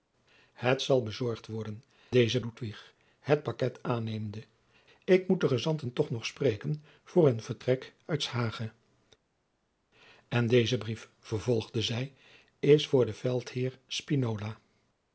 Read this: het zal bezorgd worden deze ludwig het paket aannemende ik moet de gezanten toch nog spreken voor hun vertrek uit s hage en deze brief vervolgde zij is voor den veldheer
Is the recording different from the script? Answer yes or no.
no